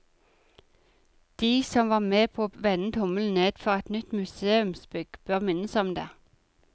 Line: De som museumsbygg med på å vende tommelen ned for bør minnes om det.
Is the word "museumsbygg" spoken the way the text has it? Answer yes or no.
no